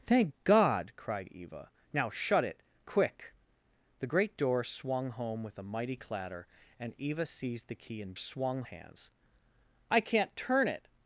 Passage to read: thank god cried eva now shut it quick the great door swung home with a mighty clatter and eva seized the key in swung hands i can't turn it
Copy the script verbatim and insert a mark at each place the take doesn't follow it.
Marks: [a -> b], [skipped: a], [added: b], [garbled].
thank god cried eva now shut it quick the great door swung home with a mighty clatter and eva seized the key in swung hands i can't turn it